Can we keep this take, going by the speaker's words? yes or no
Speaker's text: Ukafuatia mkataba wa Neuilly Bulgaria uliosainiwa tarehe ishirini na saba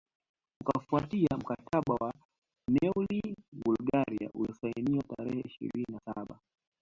yes